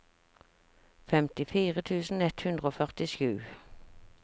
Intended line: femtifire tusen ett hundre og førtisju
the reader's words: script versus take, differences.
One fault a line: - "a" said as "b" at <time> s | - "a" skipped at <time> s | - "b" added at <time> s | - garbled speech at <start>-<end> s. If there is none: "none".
none